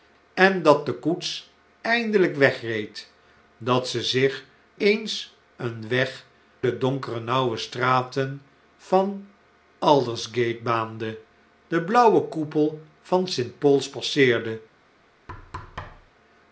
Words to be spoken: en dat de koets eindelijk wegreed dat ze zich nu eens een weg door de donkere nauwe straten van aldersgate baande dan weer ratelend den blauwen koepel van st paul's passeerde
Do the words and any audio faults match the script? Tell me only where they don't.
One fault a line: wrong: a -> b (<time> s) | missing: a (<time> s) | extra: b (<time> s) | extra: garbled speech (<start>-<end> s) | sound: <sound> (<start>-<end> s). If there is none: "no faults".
missing: nu (4.5 s)
missing: door (6.2 s)
missing: dan weer ratelend (11.2 s)
sound: thud (15.3-16.1 s)